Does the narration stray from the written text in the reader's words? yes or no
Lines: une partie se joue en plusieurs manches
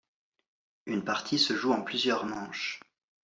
no